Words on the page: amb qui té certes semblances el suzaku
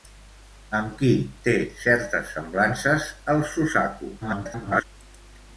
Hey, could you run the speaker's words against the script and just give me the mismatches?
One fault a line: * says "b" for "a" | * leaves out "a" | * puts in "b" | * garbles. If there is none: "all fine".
* garbles